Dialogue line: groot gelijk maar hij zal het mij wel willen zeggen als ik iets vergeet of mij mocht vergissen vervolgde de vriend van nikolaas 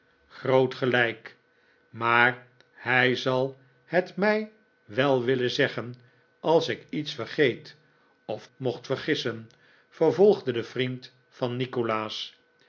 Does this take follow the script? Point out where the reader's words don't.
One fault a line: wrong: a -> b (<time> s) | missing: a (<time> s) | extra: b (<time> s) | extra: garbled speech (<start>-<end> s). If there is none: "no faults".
missing: mij (8.5 s)